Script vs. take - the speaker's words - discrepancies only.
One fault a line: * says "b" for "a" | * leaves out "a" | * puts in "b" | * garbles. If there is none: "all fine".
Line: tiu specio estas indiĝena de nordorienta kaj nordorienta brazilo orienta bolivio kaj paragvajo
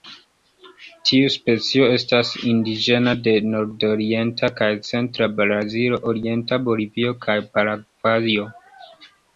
* says "centra" for "nordorienta"